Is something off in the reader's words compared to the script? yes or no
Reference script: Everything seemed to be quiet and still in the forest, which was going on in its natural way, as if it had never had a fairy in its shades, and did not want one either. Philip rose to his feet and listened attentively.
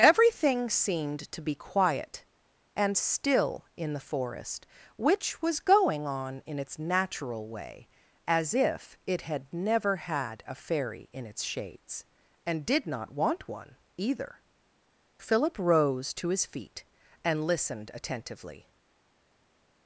no